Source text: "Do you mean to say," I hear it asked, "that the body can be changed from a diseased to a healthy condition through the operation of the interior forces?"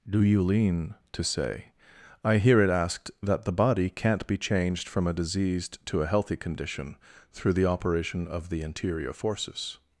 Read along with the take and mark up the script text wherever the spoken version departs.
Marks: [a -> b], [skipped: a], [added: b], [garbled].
"Do you [mean -> lean] to say," I hear it asked, "that the body [can -> can't] be changed from a diseased to a healthy condition through the operation of the interior forces?"